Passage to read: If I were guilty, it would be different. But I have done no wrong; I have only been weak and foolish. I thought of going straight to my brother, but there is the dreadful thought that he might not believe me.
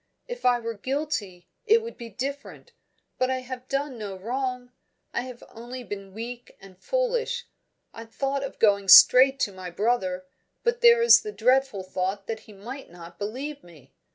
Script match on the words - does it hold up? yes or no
yes